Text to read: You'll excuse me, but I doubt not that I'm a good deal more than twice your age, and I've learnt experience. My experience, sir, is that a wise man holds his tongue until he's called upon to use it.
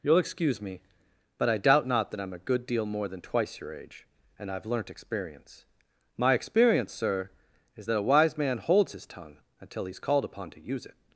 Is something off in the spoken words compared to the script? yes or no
no